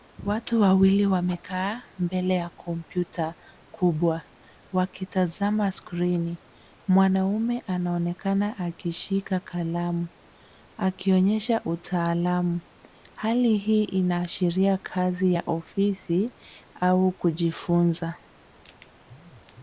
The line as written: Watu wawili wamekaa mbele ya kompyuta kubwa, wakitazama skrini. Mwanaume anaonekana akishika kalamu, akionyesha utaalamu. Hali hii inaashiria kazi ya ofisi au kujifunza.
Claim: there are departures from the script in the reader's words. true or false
false